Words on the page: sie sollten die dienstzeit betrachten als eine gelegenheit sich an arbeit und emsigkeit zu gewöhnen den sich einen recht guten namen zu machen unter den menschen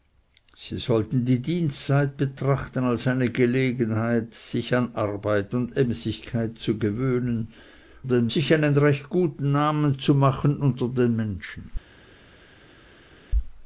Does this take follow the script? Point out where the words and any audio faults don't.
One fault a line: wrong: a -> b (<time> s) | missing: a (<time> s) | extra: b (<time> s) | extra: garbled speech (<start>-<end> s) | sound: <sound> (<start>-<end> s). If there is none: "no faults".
no faults